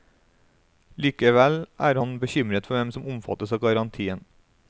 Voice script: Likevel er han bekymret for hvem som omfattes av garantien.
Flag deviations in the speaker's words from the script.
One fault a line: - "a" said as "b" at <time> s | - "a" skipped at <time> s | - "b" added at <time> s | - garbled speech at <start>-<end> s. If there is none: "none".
none